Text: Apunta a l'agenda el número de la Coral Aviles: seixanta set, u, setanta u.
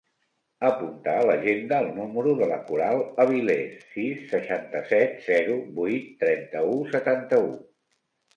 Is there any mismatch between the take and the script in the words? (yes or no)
yes